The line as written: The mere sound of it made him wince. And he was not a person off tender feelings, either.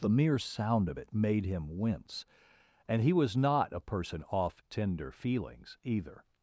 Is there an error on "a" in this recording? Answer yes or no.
no